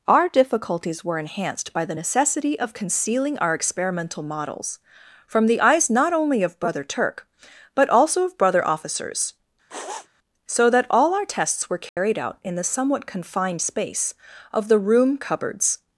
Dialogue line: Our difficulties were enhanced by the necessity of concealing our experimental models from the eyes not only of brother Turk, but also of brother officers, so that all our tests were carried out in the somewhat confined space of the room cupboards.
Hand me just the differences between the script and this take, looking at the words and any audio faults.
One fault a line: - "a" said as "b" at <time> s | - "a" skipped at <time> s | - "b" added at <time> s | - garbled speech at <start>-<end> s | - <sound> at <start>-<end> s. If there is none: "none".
- sniff at 9.7-10.1 s
- dropout at 11.9-12.0 s